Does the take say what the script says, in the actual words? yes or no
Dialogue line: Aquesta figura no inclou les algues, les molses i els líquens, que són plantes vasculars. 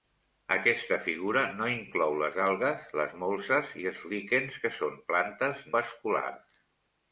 yes